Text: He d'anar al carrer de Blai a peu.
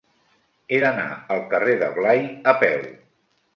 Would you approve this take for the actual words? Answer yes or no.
yes